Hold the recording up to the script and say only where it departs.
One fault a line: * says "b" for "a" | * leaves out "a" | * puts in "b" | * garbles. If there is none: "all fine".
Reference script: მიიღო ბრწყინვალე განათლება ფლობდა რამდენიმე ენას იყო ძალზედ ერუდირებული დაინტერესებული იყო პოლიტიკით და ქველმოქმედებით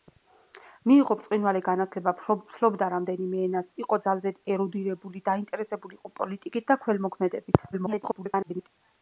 * garbles